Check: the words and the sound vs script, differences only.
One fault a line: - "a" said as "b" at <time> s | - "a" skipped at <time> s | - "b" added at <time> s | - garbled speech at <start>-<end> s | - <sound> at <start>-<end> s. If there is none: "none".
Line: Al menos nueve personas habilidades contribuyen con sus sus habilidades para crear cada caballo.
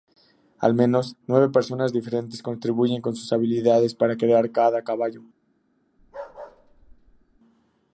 - "habilidades" said as "diferentes" at 1.9 s
- "sus" skipped at 3.3 s
- bark at 6.0-7.4 s